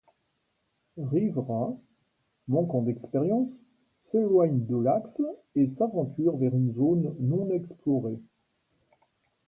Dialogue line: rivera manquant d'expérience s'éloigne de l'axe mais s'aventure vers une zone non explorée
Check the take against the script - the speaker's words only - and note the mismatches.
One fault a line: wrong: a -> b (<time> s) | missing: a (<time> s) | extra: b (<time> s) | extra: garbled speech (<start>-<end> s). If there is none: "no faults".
wrong: mais -> et (5.5 s)